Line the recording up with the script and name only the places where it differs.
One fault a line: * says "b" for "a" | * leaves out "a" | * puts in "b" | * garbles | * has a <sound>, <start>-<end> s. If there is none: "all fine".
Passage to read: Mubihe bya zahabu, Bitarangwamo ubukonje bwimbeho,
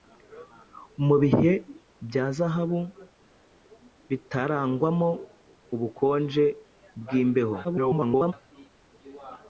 * garbles